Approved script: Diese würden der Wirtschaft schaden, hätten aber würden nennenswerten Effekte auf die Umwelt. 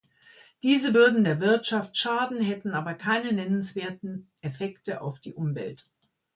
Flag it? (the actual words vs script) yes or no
yes